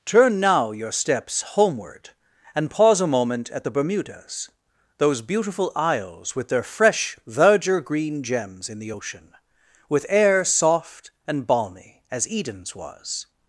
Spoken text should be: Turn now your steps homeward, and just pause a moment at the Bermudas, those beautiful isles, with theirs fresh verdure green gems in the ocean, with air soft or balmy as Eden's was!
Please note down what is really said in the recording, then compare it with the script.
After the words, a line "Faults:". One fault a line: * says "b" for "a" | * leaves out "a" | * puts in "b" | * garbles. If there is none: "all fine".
Turn now your steps homeward, and pause a moment at the Bermudas, those beautiful isles, with their fresh verdure green gems in the ocean, with air soft and balmy as Eden's was!
Faults:
* leaves out "just"
* says "their" for "theirs"
* says "and" for "or"